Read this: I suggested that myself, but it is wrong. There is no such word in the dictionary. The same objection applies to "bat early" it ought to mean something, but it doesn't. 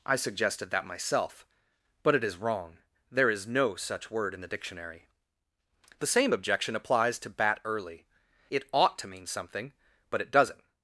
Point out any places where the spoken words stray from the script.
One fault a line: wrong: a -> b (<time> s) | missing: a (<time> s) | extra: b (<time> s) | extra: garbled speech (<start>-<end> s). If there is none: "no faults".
no faults